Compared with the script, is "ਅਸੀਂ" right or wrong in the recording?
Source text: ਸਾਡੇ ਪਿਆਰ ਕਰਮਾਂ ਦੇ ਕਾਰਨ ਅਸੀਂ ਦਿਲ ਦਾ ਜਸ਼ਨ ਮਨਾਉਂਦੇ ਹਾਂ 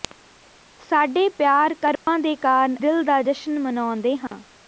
wrong